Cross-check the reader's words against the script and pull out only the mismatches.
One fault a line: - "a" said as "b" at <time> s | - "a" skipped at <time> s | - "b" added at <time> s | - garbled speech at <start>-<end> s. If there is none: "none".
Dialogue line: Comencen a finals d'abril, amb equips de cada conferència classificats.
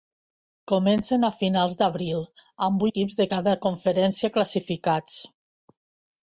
none